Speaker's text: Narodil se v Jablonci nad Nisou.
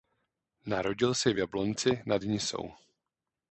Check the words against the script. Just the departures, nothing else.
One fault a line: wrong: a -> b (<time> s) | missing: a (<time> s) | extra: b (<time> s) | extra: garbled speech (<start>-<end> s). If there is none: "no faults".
no faults